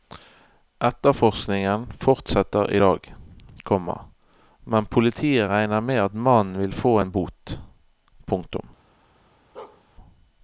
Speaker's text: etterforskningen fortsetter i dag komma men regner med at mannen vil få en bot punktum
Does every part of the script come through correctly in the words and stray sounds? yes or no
no